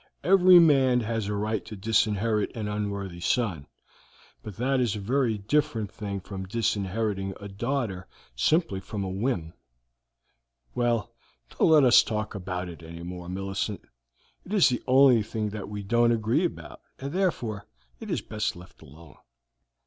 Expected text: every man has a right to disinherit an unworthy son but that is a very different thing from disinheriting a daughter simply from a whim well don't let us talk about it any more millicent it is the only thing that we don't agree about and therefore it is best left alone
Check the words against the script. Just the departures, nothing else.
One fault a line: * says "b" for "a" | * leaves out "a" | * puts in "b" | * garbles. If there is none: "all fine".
all fine